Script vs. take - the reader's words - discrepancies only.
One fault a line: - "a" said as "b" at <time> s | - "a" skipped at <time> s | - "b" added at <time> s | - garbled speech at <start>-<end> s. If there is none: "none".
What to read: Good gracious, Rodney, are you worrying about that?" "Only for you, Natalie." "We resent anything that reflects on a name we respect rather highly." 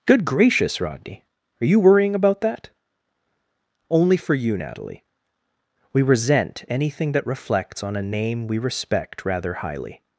none